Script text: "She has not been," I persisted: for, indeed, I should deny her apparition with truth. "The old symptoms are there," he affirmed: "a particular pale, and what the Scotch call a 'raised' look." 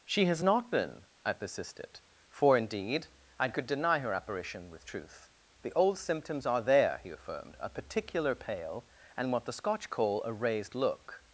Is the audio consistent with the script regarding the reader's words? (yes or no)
no